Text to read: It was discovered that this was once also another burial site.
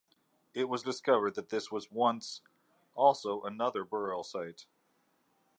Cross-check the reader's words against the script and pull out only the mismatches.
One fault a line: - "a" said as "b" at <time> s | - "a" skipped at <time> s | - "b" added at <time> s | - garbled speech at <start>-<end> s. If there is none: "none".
none